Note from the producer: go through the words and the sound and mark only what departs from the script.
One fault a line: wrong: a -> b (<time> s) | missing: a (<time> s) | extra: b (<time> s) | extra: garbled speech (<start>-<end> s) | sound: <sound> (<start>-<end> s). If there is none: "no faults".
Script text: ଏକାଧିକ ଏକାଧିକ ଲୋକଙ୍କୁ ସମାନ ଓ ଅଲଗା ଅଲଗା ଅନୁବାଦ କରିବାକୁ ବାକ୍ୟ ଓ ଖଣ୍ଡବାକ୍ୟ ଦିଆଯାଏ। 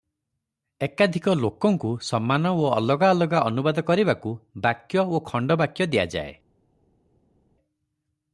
missing: ଏକାଧିକ (1.3 s)